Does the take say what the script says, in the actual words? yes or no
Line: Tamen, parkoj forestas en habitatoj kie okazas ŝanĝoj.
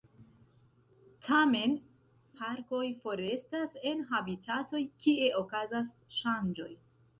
yes